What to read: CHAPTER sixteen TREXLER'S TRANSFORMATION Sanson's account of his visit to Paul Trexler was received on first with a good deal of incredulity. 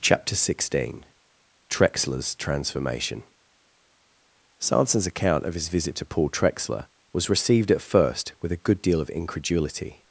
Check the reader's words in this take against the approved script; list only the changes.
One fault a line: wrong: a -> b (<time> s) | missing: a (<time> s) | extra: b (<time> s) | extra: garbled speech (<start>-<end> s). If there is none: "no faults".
wrong: on -> at (7.7 s)